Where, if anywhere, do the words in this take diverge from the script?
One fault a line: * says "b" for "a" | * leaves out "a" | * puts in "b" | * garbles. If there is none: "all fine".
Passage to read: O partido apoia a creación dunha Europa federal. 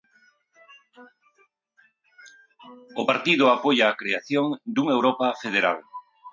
all fine